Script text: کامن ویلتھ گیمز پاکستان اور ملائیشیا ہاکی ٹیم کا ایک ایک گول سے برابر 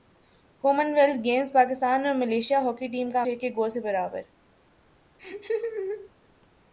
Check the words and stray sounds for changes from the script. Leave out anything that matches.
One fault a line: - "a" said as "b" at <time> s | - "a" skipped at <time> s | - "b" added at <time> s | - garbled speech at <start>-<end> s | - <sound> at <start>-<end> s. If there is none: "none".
- laugh at 5.2-6.1 s